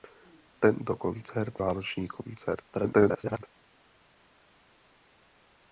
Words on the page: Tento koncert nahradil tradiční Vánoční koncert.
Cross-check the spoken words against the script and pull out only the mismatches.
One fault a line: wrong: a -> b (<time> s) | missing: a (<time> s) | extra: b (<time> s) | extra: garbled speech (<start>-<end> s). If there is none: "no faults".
missing: nahradil tradiční (1.6 s)
extra: garbled speech (2.7-3.4 s)